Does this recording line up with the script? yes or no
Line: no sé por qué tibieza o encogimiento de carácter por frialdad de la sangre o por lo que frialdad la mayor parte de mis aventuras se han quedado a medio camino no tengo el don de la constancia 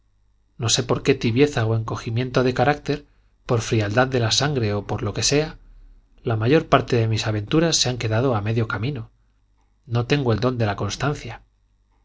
no